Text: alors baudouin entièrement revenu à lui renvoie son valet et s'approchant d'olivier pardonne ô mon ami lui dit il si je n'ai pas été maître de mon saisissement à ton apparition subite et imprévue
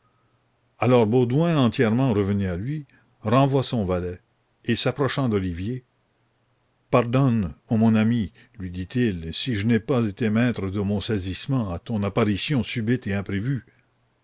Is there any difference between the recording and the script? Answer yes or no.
no